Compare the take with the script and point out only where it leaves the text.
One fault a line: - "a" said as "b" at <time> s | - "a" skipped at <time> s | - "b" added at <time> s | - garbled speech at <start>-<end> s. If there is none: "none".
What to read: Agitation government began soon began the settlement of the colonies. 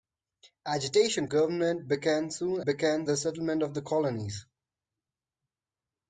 none